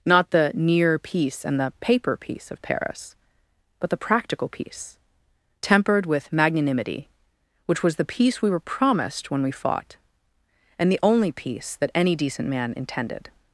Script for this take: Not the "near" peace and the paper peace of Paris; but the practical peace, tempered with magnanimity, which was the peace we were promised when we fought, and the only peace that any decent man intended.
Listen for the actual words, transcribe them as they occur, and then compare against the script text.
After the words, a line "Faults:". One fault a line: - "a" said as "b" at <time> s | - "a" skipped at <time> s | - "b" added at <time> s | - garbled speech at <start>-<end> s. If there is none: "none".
Not the "near" peace and the paper peace of Paris; but the practical peace, tempered with magnanimity, which was the peace we were promised when we fought, and the only peace that any decent man intended.
Faults:
none